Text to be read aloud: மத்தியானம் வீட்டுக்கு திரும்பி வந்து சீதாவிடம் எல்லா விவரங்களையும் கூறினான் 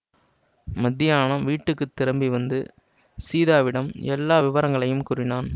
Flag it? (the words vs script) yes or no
no